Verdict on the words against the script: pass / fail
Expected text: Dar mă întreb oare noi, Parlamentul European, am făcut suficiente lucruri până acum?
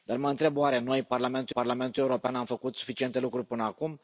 fail